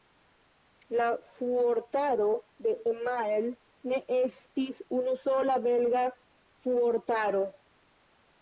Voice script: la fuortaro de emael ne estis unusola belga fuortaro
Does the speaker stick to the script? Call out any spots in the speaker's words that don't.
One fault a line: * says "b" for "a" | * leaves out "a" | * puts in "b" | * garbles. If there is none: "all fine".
all fine